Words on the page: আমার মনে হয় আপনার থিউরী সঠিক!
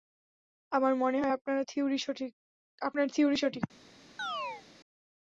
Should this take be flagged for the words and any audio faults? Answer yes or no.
yes